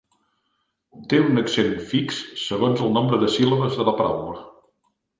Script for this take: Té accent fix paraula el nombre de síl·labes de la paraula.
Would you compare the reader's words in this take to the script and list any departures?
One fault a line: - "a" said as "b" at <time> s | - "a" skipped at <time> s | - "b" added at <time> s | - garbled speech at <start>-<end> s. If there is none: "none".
- "un" added at 1.2 s
- "paraula" said as "segons" at 2.4 s